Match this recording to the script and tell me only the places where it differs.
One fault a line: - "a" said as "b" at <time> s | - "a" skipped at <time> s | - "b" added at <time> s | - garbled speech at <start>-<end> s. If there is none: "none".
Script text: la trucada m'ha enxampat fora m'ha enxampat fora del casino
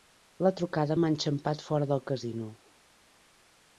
- "m'ha enxampat fora" skipped at 1.9 s